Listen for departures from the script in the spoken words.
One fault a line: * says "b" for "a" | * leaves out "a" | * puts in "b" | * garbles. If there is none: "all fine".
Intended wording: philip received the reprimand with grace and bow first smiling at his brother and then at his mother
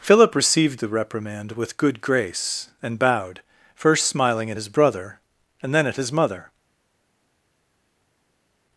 * puts in "good"
* says "bowed" for "bow"